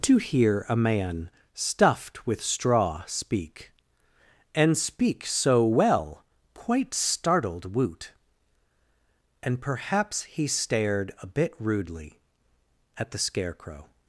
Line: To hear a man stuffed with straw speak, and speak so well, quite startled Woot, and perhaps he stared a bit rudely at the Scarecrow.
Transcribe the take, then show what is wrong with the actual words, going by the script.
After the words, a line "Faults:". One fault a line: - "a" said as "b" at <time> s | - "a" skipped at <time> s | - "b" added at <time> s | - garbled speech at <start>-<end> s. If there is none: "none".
To hear a man stuffed with straw speak, and speak so well, quite startled Woot, and perhaps he stared a bit rudely at the Scarecrow.
Faults:
none